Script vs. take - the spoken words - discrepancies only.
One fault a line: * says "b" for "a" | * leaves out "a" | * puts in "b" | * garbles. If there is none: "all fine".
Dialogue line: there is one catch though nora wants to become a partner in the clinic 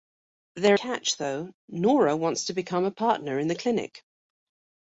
* leaves out "is one"